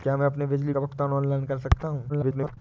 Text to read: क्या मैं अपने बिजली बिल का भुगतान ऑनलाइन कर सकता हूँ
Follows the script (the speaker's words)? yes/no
no